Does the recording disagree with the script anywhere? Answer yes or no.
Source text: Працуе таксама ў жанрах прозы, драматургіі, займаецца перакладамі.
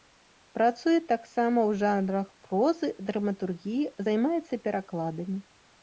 no